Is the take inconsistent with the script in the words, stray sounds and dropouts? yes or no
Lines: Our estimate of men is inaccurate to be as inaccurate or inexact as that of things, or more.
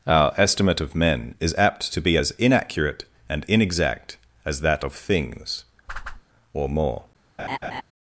yes